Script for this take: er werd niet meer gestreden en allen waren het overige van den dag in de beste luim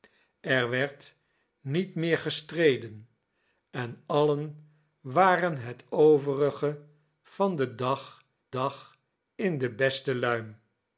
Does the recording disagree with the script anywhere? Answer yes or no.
yes